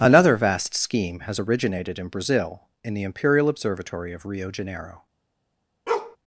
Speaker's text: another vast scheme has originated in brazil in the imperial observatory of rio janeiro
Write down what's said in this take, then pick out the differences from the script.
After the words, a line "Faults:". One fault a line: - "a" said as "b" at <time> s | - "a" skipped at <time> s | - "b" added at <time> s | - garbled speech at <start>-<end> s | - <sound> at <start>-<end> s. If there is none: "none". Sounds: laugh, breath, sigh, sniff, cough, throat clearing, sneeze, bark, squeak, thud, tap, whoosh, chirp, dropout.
another vast scheme has originated in brazil in the imperial observatory of rio janeiro
Faults:
- bark at 5.9-6.2 s